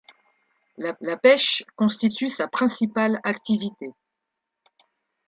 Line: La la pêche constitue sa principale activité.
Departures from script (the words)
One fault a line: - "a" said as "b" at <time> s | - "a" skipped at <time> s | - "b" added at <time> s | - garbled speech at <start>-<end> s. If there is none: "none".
none